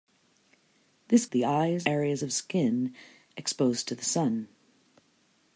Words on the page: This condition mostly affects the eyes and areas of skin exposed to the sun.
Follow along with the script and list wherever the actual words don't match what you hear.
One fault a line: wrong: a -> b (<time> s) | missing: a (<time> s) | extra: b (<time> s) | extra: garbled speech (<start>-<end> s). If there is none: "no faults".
missing: condition mostly affects (1.2 s)
missing: and (1.9 s)